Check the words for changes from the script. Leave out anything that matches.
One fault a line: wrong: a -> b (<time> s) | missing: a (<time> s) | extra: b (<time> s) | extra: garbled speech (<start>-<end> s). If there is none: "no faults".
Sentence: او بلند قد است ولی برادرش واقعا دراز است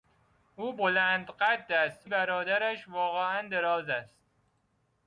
missing: ولی (2.1 s)